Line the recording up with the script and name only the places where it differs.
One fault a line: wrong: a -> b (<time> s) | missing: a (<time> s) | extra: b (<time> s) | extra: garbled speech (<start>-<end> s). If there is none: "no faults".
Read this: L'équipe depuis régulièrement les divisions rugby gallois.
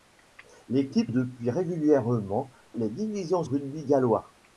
no faults